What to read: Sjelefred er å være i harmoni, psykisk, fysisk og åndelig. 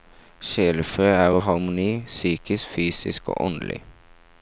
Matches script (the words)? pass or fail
fail